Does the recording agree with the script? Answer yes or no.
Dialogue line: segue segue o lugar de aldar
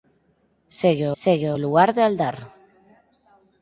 yes